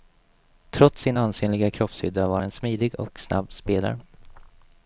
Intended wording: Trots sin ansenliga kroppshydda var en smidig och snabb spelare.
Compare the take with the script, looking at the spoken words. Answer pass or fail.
pass